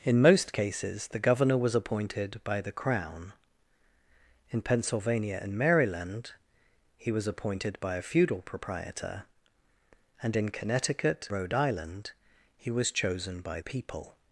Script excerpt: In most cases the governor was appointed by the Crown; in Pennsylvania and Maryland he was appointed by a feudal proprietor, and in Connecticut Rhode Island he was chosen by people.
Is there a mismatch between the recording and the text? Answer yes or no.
no